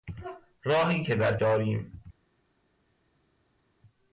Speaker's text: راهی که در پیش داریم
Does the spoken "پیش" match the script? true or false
false